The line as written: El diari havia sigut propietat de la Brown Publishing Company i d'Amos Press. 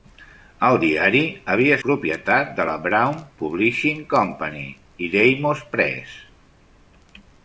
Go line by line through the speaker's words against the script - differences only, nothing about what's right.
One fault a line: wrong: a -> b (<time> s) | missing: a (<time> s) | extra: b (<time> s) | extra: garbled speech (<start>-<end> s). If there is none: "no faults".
missing: sigut (1.8 s)